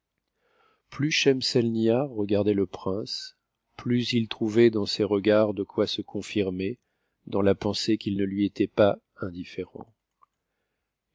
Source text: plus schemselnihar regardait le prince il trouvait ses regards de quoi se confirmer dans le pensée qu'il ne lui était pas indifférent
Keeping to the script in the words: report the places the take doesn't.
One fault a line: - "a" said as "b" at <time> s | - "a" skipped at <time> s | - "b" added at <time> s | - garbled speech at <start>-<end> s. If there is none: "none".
- "plus" added at 3.8 s
- "dans" added at 4.7 s
- "le" said as "la" at 7.4 s